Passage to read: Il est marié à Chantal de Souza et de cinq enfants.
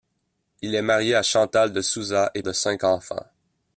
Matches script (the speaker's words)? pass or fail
pass